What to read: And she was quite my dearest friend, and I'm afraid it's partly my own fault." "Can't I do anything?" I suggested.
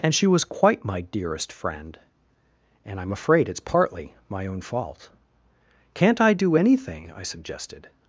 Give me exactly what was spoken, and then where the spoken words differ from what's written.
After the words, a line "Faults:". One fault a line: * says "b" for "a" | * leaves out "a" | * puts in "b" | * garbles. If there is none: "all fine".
And she was quite my dearest friend, and I'm afraid it's partly my own fault." "Can't I do anything?" I suggested.
Faults:
all fine